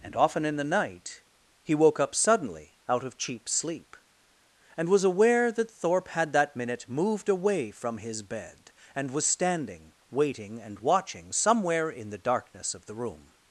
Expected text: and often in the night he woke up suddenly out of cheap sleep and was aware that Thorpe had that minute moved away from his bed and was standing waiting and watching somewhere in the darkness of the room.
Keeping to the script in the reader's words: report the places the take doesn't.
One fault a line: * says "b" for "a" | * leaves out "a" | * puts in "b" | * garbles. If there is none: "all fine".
all fine